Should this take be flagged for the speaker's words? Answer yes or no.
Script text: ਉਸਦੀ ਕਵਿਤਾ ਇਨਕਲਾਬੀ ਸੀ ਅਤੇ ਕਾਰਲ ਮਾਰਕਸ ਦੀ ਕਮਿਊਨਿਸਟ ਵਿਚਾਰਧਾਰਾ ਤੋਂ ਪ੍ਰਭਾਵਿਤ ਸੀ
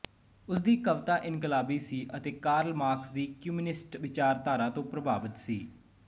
no